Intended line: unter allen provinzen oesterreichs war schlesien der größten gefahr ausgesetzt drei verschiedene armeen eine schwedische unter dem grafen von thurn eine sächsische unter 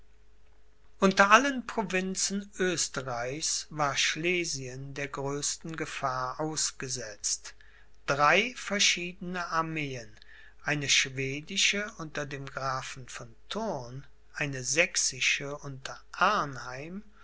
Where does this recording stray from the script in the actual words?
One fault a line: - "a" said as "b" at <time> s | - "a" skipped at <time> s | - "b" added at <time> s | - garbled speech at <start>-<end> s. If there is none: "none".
none